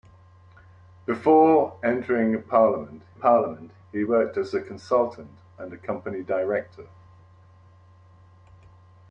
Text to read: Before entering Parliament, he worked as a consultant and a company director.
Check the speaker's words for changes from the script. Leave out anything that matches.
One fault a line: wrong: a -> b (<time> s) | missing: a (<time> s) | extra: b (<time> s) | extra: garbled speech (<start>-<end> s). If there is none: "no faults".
extra: Parliament (3.1 s)